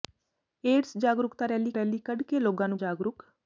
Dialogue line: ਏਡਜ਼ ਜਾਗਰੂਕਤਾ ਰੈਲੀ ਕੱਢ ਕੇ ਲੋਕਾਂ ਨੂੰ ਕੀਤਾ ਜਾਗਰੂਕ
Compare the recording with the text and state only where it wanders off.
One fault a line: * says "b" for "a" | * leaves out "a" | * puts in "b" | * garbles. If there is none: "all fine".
* puts in "ਰੈਲੀ"
* leaves out "ਕੀਤਾ"